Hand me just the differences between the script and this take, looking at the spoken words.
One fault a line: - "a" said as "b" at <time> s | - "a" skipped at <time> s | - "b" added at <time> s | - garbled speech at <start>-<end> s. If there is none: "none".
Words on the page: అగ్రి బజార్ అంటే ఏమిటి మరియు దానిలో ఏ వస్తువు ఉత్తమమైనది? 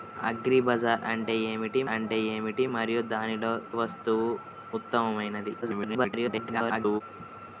- "అంటే ఏమిటి" added at 1.9 s
- "ఏ" skipped at 3.5 s
- garbled speech at 5.6-7.0 s